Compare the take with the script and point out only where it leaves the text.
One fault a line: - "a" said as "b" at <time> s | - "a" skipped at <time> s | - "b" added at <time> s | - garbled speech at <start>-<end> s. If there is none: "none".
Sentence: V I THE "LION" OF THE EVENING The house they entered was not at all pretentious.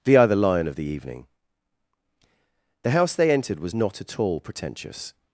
none